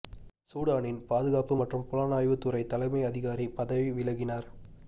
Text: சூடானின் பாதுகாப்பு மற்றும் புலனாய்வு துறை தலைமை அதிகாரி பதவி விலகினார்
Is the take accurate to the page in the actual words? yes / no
yes